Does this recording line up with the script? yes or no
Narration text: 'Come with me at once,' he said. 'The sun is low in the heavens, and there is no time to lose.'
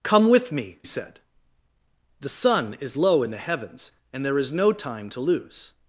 no